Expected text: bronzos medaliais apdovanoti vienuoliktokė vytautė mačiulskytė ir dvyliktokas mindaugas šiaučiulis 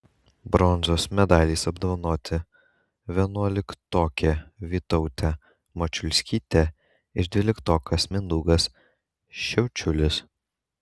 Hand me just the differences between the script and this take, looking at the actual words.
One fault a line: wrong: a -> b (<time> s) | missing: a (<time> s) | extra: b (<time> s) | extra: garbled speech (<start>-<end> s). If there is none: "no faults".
no faults